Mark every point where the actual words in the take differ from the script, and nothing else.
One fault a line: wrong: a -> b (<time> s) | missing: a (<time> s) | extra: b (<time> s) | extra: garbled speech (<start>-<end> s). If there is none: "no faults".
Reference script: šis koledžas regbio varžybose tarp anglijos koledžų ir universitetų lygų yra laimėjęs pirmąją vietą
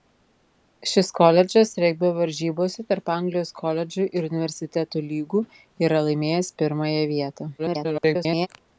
extra: garbled speech (7.6-8.5 s)